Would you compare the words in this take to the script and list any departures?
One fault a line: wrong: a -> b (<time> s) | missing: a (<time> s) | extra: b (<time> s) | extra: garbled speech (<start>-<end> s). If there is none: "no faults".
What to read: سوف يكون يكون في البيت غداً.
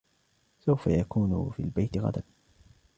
missing: يكون (1.5 s)